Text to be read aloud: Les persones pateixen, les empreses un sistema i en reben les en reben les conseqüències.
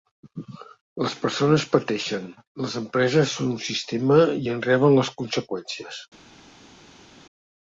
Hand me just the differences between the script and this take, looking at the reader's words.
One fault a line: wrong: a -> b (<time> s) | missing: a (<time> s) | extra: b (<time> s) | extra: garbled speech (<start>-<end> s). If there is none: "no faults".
extra: són (3.4 s)
missing: en reben les (5.2 s)